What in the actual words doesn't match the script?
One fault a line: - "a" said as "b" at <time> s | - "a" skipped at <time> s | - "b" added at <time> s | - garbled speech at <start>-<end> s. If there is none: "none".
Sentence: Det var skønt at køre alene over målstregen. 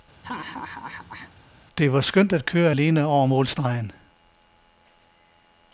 none